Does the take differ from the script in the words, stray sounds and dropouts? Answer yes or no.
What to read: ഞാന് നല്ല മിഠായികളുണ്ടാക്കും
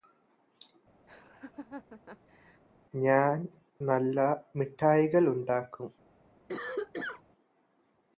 yes